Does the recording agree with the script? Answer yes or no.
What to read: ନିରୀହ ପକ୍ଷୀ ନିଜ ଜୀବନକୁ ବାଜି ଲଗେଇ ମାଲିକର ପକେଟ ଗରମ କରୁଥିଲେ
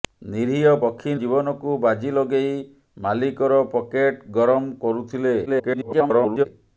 no